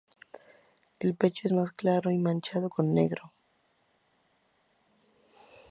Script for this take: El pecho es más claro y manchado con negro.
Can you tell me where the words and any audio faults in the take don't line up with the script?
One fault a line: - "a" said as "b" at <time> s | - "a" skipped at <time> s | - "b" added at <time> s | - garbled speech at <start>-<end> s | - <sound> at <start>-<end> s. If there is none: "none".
none